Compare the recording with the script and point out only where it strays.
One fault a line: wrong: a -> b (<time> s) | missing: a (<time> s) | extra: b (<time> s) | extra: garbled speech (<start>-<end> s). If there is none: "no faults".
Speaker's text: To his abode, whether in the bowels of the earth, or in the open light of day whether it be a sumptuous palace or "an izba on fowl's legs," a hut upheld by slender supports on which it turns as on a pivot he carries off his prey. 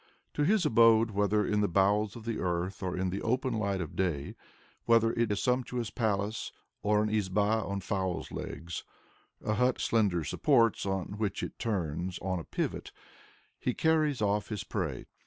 missing: be (5.3 s)
missing: upheld by (9.8 s)
missing: as (12.2 s)